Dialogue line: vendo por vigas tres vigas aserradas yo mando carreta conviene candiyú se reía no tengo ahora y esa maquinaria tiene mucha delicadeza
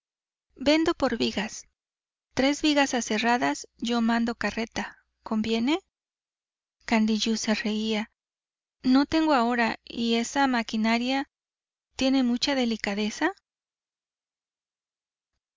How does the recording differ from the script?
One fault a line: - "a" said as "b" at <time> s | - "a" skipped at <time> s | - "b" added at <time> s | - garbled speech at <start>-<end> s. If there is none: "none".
none